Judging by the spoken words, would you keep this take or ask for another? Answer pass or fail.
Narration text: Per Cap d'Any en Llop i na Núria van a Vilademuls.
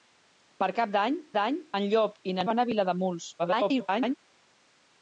fail